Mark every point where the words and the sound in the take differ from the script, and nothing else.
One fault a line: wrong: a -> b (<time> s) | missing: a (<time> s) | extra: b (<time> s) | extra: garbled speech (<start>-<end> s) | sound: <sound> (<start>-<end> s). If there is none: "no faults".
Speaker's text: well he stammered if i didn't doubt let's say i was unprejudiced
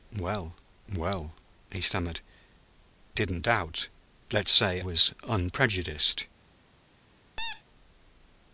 extra: well (0.9 s)
missing: if i (2.2 s)
missing: i (4.8 s)
sound: squeak (7.4-7.6 s)